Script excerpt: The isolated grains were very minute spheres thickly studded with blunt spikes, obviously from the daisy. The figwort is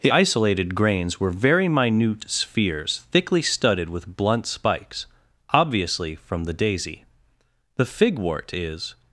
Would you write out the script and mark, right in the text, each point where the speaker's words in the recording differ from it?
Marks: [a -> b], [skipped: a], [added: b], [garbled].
The isolated grains were very minute spheres thickly studded with blunt spikes, obviously from the daisy. The figwort is